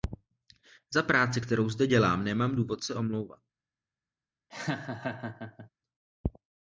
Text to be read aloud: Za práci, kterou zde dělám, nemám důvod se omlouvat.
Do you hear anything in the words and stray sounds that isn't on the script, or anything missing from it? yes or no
yes